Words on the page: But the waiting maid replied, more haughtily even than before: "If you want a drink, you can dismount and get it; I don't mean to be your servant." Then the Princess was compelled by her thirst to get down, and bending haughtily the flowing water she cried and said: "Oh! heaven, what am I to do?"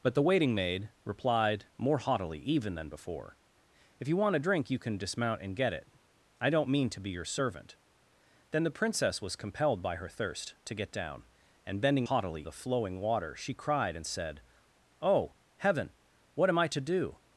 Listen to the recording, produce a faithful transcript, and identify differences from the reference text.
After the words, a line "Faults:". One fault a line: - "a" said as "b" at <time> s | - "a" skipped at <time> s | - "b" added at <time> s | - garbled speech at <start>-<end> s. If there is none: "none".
But the waiting maid replied, more haughtily even than before: "If you want a drink, you can dismount and get it; I don't mean to be your servant." Then the Princess was compelled by her thirst to get down, and bending haughtily the flowing water she cried and said: "Oh! heaven, what am I to do?"
Faults:
none